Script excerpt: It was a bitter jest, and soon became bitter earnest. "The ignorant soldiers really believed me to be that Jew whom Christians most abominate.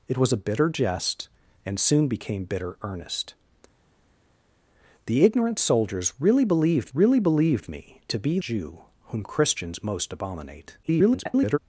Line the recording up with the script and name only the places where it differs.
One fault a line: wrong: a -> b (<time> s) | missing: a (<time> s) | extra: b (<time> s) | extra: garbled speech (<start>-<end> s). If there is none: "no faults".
extra: really believed (6.9 s)
missing: that (8.4 s)
extra: garbled speech (10.8-11.6 s)